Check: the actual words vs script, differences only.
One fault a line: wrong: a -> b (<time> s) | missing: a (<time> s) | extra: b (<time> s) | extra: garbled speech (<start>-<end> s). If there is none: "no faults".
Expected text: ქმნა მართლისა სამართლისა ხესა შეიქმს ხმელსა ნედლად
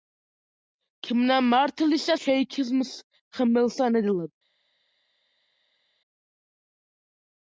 missing: სამართლისა ხესა (2.1 s)